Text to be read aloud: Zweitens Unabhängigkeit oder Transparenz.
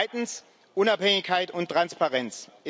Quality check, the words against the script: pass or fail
fail